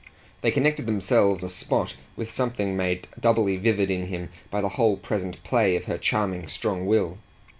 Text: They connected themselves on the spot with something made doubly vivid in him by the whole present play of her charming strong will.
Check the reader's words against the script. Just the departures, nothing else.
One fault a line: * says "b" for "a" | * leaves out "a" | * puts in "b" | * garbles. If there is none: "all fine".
* leaves out "on"